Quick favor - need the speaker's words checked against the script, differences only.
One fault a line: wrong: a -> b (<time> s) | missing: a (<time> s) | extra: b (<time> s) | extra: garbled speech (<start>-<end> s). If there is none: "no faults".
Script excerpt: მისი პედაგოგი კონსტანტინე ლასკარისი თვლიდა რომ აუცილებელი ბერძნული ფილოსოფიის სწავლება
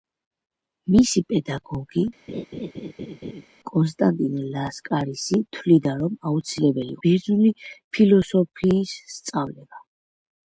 no faults